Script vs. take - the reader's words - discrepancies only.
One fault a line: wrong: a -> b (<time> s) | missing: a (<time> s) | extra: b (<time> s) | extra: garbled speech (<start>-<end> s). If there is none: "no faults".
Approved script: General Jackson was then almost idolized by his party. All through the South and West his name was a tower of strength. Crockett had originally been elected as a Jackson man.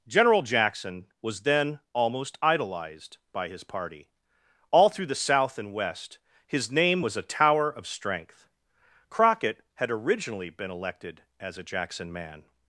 no faults